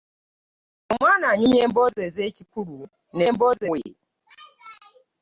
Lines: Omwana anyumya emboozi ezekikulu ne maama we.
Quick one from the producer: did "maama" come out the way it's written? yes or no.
no